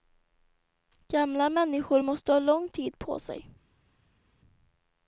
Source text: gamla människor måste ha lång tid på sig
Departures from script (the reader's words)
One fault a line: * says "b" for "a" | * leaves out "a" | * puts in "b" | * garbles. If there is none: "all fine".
all fine